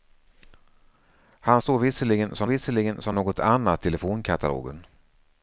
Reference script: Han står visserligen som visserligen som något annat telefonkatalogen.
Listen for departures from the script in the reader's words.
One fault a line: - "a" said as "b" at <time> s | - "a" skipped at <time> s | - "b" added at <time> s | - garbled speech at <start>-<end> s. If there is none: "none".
none